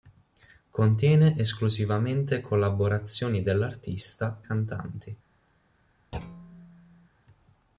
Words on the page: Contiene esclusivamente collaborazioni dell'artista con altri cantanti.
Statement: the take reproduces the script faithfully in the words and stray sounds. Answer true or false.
false